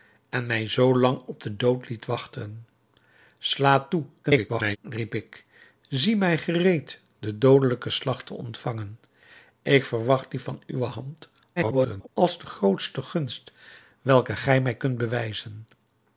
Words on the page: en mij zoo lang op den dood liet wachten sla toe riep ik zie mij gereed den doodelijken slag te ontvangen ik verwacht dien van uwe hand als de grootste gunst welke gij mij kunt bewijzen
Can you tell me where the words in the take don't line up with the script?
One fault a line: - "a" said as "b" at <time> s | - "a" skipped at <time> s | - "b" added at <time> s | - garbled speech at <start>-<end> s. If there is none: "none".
- garbled speech at 4.2-4.8 s
- garbled speech at 11.6-12.1 s